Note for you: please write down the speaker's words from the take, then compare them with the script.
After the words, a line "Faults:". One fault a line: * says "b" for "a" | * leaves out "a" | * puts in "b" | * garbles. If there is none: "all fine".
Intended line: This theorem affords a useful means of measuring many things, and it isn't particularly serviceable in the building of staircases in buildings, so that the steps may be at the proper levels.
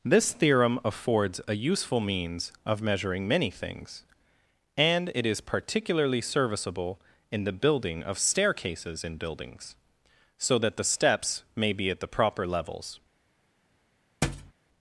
This theorem affords a useful means of measuring many things, and it is particularly serviceable in the building of staircases in buildings, so that the steps may be at the proper levels.
Faults:
* says "is" for "isn't"